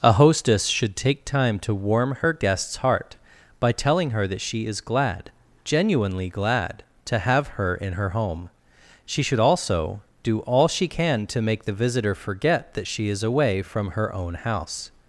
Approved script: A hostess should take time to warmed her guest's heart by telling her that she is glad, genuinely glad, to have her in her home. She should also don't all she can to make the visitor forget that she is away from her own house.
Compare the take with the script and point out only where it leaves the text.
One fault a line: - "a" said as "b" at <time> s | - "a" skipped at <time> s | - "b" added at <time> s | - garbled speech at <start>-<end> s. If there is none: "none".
- "warmed" said as "warm" at 1.8 s
- "don't" said as "do" at 10.2 s